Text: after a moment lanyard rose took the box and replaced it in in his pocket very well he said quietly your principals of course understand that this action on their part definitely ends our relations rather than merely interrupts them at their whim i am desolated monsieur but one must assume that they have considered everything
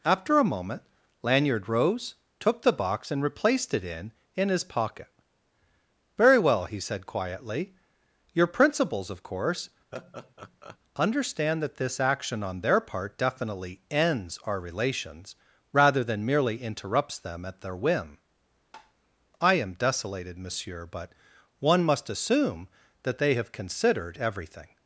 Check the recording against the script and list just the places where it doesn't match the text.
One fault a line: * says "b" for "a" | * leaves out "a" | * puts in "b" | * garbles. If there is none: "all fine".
all fine